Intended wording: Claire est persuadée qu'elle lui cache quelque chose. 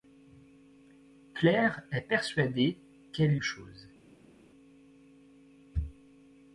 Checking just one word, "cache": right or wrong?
wrong